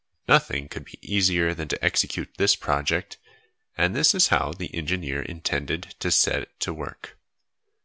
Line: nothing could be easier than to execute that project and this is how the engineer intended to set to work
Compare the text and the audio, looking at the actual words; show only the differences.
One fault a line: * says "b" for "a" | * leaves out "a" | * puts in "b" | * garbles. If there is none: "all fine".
* says "this" for "that"